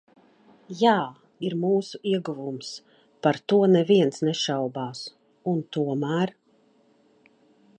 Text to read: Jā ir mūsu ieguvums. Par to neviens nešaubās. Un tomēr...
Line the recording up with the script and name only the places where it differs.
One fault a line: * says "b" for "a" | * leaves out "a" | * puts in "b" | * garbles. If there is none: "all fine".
all fine